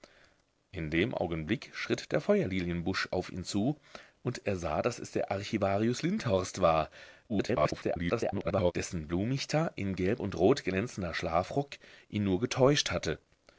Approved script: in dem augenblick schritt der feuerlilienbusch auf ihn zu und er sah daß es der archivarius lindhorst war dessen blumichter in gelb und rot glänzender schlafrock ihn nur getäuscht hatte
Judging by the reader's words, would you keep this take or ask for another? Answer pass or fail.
fail